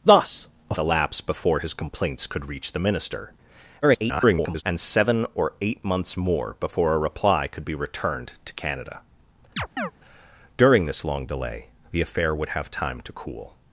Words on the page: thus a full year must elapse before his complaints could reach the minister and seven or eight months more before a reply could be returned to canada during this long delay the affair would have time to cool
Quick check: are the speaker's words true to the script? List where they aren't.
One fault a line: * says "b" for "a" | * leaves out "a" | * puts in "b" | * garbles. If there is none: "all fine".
* leaves out "full year must"
* garbles